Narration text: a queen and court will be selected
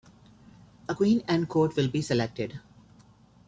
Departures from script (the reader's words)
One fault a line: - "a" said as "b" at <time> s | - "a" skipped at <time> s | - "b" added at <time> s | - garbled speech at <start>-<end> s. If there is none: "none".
none